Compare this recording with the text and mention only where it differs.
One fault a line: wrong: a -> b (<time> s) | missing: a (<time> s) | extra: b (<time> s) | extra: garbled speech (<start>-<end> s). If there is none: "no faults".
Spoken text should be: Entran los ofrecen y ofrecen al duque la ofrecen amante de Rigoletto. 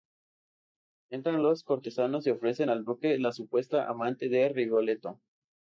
wrong: ofrecen -> cortesanos (1.6 s)
wrong: ofrecen -> supuesta (3.3 s)